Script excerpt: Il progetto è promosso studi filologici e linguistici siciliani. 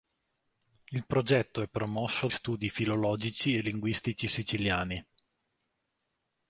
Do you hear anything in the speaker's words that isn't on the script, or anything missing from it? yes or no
no